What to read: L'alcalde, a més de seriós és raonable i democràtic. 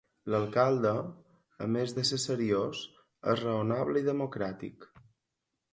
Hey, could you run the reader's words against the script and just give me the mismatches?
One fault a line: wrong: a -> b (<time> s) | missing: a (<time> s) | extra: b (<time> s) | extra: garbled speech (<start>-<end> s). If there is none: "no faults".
extra: ser (2.1 s)